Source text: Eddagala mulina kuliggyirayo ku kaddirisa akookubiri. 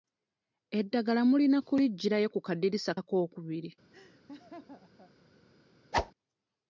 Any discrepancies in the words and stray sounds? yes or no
yes